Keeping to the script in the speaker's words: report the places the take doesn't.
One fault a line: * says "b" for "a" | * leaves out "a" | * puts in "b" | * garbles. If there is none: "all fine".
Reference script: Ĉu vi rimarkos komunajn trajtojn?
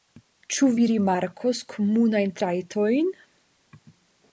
all fine